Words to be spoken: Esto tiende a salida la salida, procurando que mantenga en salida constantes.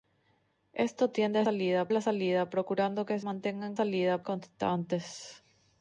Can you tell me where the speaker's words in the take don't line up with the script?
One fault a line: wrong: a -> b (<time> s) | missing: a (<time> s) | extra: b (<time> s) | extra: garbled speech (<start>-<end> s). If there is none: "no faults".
no faults